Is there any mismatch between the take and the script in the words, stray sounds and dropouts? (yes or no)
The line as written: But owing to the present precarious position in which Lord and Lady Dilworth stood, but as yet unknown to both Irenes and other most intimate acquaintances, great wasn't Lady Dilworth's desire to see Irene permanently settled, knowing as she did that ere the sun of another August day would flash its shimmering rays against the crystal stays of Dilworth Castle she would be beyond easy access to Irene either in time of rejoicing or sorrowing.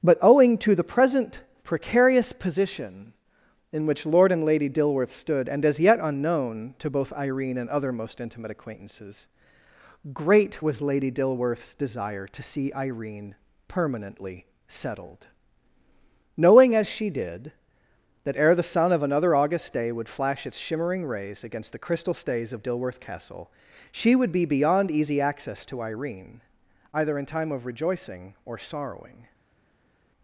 yes